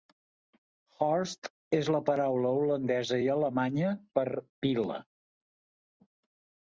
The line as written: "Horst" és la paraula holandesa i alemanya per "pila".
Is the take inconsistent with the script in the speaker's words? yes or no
no